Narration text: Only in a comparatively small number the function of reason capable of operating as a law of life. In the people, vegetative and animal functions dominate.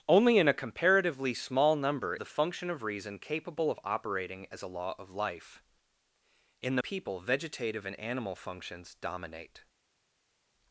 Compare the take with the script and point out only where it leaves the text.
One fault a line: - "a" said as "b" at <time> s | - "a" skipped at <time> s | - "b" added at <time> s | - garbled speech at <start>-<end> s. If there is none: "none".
none